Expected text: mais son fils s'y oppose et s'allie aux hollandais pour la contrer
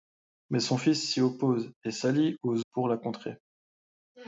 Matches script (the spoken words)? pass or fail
fail